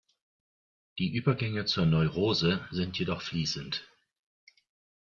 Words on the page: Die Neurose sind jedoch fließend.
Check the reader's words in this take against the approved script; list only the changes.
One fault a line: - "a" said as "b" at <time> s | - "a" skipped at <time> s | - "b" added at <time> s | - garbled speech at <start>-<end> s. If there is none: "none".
- "Übergänge zur" added at 1.1 s